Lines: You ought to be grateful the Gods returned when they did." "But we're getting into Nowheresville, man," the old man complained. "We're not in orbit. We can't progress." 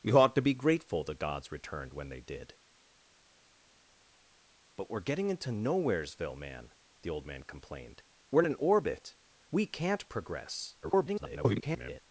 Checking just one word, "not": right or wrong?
wrong